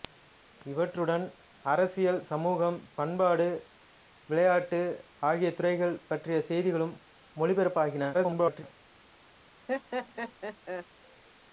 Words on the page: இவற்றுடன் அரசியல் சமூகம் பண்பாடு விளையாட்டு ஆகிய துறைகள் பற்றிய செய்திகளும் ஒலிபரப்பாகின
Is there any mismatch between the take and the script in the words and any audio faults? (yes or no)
yes